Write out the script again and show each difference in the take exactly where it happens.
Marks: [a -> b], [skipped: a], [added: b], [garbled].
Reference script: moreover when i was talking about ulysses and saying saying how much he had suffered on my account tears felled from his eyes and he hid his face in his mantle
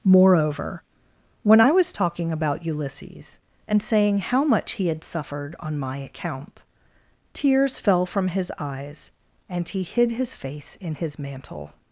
moreover when i was talking about ulysses and saying [skipped: saying] how much he had suffered on my account tears [felled -> fell] from his eyes and he hid his face in his mantle